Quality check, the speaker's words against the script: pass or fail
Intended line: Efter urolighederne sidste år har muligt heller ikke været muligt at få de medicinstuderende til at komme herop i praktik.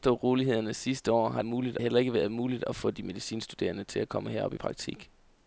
pass